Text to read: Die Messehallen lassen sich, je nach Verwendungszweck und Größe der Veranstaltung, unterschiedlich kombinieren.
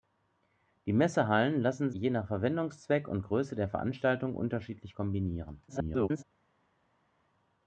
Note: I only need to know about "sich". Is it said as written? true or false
false